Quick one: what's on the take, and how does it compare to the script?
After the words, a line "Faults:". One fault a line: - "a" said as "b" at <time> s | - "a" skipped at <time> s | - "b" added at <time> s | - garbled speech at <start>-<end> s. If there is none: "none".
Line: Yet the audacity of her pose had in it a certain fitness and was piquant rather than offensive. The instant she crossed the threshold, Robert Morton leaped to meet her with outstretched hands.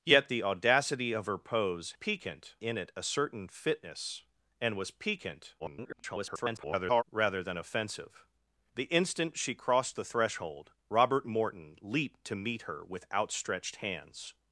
Yet the audacity of her pose piquant in it a certain fitness and was piquant [garbled] rather than offensive. The instant she crossed the threshold, Robert Morton leaped to meet her with outstretched hands.
Faults:
- "had" said as "piquant" at 1.9 s
- garbled speech at 5.6-7.0 s